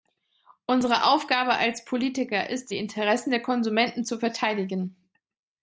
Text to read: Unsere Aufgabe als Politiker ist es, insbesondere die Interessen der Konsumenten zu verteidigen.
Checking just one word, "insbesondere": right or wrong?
wrong